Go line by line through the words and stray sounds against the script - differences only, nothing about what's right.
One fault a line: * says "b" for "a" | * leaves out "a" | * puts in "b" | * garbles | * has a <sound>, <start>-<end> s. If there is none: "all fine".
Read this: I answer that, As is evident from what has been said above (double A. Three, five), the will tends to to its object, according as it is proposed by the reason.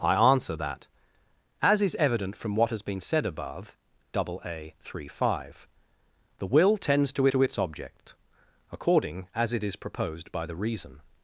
all fine